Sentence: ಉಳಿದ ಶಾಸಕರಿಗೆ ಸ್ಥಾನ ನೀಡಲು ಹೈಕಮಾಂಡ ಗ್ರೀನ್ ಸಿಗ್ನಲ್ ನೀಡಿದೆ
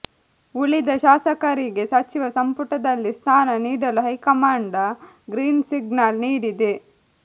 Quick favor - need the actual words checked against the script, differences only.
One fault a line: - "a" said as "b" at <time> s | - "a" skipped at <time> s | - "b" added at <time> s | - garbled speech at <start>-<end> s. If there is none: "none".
- "ಸಚಿವ ಸಂಪುಟದಲ್ಲಿ" added at 1.9 s